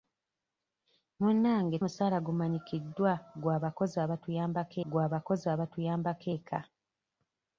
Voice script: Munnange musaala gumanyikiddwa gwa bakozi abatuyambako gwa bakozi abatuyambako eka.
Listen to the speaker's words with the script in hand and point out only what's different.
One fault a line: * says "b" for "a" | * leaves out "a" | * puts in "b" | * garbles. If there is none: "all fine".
all fine